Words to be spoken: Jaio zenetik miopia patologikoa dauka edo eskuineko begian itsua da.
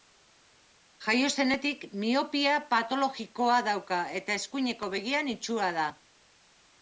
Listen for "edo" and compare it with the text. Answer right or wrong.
wrong